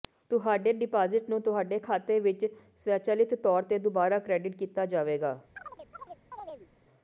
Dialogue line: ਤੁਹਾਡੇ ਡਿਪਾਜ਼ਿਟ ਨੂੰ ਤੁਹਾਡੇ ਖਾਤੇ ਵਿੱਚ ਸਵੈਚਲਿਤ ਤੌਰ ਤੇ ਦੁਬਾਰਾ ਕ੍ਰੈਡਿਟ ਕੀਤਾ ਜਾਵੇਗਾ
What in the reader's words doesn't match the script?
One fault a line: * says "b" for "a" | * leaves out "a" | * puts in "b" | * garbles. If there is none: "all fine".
all fine